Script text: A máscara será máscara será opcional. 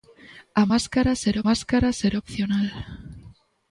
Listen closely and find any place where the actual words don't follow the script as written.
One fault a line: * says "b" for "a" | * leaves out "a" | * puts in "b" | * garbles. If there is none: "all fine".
all fine